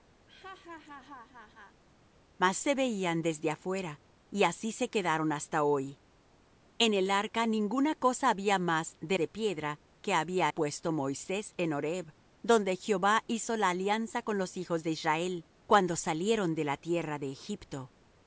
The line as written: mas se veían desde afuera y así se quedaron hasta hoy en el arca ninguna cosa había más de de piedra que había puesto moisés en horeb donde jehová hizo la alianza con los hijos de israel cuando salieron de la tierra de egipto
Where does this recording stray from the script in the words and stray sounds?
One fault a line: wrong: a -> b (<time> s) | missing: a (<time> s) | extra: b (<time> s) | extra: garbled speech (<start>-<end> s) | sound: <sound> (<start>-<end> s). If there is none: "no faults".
sound: laugh (0.3-1.8 s)